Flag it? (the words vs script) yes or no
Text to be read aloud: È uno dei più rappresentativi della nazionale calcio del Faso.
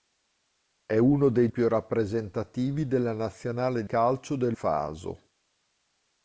no